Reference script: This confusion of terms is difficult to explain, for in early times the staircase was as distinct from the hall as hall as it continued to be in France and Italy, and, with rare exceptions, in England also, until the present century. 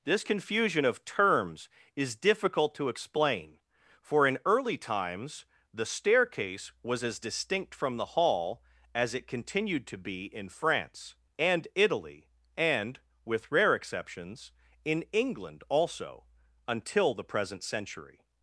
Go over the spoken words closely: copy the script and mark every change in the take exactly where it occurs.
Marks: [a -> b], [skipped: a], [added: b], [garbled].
This confusion of terms is difficult to explain, for in early times the staircase was as distinct from the hall as [skipped: hall as] it continued to be in France and Italy, and, with rare exceptions, in England also, until the present century.